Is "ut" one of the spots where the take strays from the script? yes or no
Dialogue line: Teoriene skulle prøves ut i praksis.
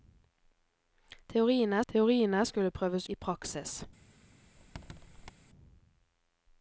yes